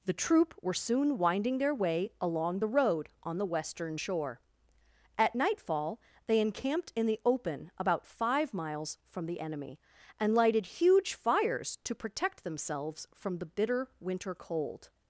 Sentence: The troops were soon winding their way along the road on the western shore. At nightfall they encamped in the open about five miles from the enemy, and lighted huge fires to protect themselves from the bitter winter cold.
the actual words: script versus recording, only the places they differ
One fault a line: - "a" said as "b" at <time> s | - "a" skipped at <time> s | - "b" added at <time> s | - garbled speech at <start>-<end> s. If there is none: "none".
- "troops" said as "troop" at 0.1 s